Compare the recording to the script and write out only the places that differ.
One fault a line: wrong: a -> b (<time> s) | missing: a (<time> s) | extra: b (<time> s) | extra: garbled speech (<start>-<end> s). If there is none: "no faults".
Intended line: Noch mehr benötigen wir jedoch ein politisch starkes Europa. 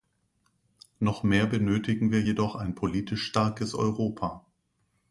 no faults